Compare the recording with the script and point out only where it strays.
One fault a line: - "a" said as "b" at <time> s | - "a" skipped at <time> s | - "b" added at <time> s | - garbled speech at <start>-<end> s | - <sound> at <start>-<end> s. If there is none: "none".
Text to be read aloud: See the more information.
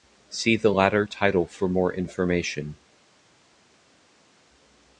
- "latter title for" added at 0.7 s